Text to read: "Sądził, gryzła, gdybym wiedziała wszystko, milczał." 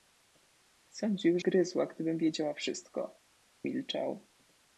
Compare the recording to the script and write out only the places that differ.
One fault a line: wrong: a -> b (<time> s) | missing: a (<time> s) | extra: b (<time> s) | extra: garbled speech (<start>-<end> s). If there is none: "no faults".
no faults